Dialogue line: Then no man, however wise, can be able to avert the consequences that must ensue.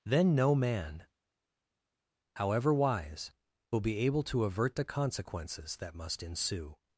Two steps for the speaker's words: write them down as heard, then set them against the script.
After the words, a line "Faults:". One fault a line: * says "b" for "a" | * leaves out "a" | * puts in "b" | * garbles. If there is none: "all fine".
Then no man, however wise, will be able to avert the consequences that must ensue.
Faults:
* says "will" for "can"